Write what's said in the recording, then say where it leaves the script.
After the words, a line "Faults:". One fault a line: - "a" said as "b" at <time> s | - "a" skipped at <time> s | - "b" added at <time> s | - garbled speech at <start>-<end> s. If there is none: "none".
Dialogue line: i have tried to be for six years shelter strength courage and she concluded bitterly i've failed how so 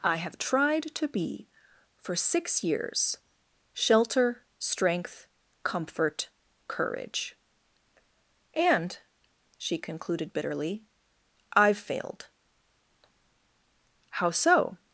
i have tried to be for six years shelter strength comfort courage and she concluded bitterly i've failed how so
Faults:
- "comfort" added at 5.6 s